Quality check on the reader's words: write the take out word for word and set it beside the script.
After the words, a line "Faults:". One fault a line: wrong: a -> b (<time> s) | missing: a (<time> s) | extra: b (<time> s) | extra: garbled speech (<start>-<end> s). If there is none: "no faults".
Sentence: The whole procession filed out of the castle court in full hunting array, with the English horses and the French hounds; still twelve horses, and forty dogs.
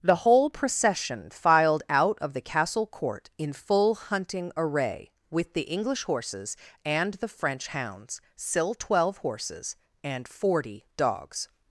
The whole procession filed out of the castle court in full hunting array, with the English horses and the French hounds; still twelve horses, and forty dogs.
Faults:
no faults